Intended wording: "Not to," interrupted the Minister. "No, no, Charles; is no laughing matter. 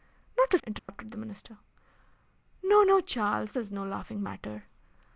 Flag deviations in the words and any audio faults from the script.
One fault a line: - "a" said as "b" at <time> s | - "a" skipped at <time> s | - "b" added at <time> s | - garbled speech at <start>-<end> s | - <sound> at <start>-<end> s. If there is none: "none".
- dropout at 0.8-0.9 s